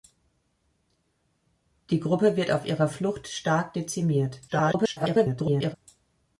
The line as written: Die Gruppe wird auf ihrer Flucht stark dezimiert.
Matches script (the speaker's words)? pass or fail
fail